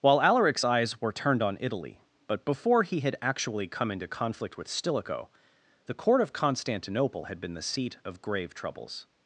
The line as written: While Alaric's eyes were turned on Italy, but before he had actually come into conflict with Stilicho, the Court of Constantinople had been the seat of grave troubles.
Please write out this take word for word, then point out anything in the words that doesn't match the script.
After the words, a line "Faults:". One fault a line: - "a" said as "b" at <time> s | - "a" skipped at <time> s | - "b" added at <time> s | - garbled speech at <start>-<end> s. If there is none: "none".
While Alaric's eyes were turned on Italy, but before he had actually come into conflict with Stilicho, the Court of Constantinople had been the seat of grave troubles.
Faults:
none